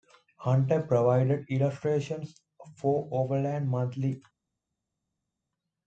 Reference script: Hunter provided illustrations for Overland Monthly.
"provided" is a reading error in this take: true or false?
false